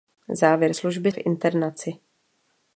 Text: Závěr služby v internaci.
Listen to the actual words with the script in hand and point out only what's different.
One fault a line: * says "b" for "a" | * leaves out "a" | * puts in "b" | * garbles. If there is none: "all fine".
all fine